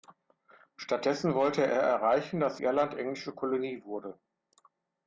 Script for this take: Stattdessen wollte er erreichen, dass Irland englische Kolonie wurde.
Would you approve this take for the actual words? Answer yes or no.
yes